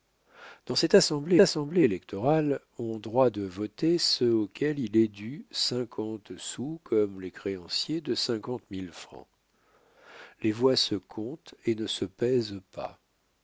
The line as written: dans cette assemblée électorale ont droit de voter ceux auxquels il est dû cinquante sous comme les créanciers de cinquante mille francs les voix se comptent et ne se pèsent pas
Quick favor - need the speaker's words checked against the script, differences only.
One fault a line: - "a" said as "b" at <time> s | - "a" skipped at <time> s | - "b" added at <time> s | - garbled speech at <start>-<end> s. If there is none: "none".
- "assemblée" added at 1.4 s